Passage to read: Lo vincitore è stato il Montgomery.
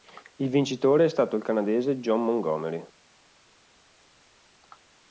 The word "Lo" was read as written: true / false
false